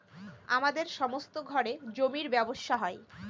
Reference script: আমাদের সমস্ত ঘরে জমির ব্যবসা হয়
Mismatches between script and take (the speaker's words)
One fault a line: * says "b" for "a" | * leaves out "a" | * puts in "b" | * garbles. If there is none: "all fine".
all fine